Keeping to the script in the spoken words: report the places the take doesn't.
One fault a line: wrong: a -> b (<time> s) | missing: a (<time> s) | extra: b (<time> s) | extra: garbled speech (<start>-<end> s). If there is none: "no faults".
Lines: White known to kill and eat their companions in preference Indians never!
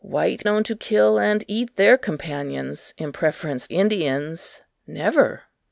no faults